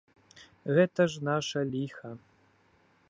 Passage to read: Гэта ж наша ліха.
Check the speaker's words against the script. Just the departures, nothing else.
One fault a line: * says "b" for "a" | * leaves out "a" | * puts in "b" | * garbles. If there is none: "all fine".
all fine